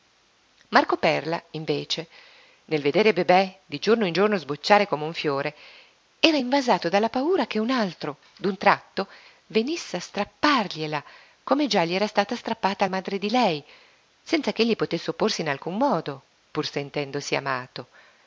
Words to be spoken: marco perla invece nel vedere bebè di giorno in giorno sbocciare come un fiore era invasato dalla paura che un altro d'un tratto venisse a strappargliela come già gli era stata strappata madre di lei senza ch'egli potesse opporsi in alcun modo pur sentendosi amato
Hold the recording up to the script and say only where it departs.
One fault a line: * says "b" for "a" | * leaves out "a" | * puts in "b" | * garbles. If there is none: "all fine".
all fine